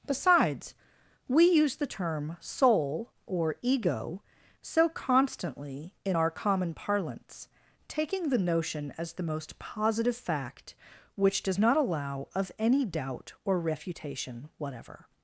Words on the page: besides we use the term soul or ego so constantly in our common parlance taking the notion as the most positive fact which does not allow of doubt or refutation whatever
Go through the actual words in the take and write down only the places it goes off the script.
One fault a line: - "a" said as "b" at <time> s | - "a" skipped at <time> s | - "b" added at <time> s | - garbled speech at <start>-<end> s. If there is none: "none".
- "any" added at 12.6 s